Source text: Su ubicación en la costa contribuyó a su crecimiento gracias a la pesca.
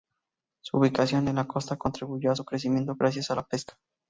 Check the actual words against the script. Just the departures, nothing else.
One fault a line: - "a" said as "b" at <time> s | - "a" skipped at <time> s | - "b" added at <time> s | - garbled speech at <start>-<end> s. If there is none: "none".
none